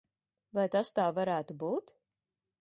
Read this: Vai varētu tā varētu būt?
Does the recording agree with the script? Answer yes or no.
no